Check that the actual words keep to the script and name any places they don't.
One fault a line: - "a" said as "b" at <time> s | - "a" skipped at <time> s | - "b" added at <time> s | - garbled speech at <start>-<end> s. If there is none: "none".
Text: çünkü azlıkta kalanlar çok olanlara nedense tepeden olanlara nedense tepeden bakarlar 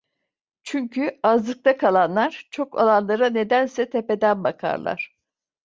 - "olanlara nedense tepeden" skipped at 4.4 s